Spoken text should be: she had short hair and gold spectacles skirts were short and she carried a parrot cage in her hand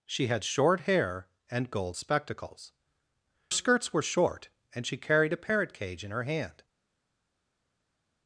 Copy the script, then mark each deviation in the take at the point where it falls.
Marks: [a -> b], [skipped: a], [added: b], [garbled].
she had short hair and gold spectacles skirts were short and she carried a parrot cage in her hand